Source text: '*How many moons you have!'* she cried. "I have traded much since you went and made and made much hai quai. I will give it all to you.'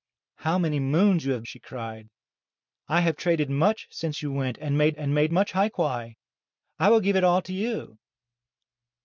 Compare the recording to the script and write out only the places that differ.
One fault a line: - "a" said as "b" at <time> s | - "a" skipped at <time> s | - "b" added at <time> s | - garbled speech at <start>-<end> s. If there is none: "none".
none